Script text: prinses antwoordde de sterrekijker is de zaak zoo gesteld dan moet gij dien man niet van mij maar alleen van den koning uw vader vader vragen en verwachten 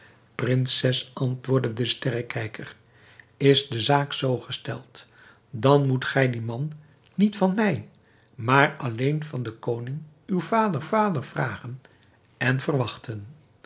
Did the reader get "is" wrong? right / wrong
right